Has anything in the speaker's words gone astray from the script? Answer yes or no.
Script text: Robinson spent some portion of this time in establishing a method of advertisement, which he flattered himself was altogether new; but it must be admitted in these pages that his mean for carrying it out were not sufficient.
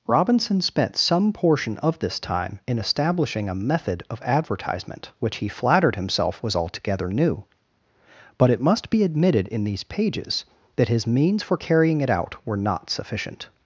yes